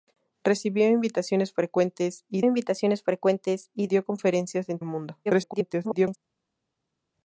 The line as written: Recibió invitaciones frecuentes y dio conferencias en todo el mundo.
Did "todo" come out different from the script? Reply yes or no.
yes